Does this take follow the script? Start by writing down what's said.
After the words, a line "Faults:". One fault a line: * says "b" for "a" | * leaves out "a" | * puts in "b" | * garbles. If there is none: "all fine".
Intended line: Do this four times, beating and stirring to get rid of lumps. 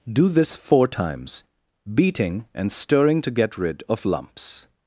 Do this four times, beating and stirring to get rid of lumps.
Faults:
all fine